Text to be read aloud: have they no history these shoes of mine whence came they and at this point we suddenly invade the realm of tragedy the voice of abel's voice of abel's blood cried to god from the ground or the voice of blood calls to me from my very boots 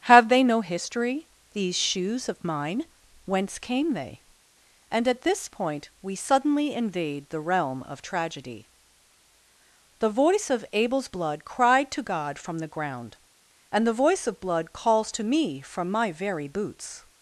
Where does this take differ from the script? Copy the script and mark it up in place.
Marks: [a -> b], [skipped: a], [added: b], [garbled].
have they no history these shoes of mine whence came they and at this point we suddenly invade the realm of tragedy the voice of abel's [skipped: voice of abel's] blood cried to god from the ground [or -> and] the voice of blood calls to me from my very boots